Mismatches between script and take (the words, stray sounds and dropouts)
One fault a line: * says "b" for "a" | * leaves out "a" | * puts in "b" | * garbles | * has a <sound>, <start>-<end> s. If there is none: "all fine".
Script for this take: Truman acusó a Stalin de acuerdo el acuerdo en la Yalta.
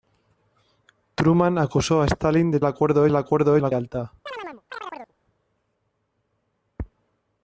* has a chirp, 4.3-5.1 s